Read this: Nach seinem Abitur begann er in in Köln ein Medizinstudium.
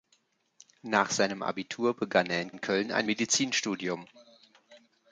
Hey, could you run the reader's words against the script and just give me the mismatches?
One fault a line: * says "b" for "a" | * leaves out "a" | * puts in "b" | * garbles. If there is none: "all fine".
all fine